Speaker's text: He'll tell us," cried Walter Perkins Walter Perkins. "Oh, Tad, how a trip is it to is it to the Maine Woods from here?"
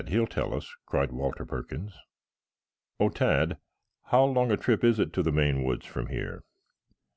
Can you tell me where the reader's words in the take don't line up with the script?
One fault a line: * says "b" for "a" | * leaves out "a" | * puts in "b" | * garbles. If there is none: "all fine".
* leaves out "Walter Perkins"
* puts in "long"
* leaves out "is it to"